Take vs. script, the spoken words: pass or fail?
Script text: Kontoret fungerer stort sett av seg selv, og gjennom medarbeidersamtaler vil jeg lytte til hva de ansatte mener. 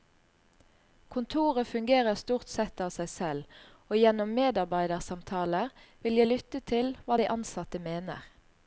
pass